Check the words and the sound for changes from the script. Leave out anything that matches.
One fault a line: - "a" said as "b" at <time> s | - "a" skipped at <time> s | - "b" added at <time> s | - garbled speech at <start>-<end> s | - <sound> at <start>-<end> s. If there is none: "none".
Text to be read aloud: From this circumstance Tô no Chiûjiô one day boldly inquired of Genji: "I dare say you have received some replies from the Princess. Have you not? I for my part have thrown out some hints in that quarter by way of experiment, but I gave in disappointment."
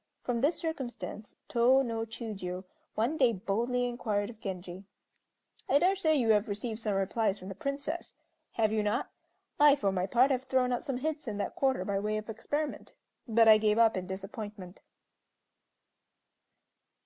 - "up" added at 13.8 s